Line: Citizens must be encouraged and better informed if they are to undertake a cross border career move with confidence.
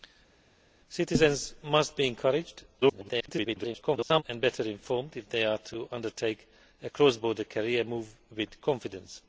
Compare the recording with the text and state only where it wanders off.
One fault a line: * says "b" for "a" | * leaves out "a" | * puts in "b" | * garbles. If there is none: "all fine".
* garbles